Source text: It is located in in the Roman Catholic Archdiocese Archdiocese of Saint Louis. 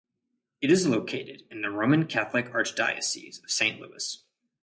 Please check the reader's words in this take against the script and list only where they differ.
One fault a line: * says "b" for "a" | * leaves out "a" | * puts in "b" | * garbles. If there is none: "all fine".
* leaves out "in"
* leaves out "Archdiocese"